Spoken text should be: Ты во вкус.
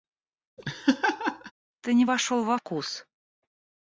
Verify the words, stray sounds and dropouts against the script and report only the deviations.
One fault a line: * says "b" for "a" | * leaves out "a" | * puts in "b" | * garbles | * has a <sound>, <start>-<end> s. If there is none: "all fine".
* has a laugh, 0.6-1.5 s
* puts in "не вошел"